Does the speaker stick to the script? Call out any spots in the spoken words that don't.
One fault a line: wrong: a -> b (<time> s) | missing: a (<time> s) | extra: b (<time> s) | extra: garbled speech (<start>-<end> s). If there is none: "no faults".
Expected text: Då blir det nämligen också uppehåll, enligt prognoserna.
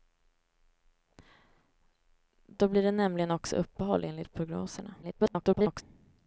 extra: garbled speech (5.0-5.8 s)